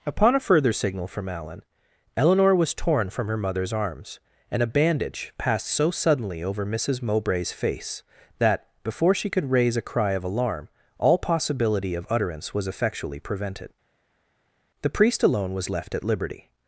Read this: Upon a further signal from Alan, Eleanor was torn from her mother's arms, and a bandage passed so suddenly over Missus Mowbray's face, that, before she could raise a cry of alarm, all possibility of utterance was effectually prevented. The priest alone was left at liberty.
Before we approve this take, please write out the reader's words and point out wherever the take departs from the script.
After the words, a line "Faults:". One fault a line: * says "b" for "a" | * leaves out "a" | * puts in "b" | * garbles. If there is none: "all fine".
Upon a further signal from Alan, Eleanor was torn from her mother's arms, and a bandage passed so suddenly over Missus Mowbray's face, that, before she could raise a cry of alarm, all possibility of utterance was effectually prevented. The priest alone was left at liberty.
Faults:
all fine